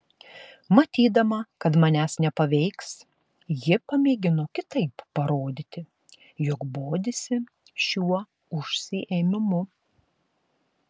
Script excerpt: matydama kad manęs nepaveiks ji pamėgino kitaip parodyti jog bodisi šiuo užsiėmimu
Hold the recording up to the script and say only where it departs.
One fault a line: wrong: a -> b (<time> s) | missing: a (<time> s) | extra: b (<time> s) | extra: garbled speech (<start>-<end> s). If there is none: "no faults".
no faults